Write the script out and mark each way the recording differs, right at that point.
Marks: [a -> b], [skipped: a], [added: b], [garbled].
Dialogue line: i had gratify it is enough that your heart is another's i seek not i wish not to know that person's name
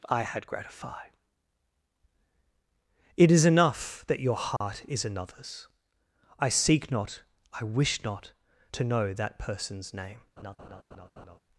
i had gratify it is enough that your heart is another's i seek not i wish not to know that person's name